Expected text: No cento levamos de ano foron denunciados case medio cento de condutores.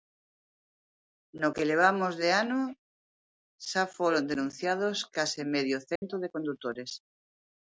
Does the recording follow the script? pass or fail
fail